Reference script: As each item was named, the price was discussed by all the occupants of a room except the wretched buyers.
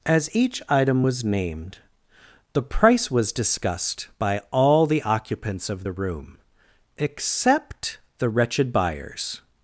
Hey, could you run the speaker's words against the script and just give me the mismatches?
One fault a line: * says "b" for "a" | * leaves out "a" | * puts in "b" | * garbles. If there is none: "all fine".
* says "the" for "a"